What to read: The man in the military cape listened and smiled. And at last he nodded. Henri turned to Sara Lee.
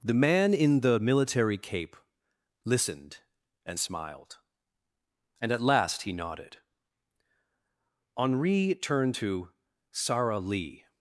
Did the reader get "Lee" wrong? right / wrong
right